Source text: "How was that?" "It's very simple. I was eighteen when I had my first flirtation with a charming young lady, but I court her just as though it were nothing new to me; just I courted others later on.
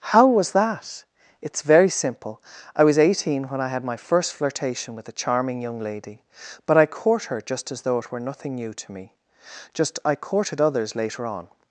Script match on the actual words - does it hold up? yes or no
yes